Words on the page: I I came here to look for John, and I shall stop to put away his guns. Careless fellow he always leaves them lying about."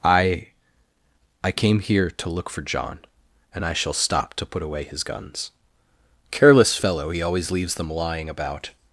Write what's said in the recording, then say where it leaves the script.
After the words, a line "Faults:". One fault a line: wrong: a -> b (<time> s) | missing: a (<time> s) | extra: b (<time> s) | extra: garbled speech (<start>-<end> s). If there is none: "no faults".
I I came here to look for John, and I shall stop to put away his guns. Careless fellow he always leaves them lying about."
Faults:
no faults